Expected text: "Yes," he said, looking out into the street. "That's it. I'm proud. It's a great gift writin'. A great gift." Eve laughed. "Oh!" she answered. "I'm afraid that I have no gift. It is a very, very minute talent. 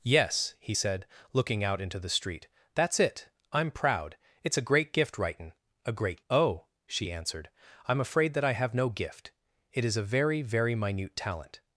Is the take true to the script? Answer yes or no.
no